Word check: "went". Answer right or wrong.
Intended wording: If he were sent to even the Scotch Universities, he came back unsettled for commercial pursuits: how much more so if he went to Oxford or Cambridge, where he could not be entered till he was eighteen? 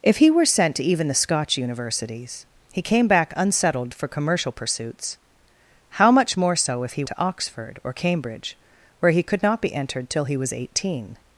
wrong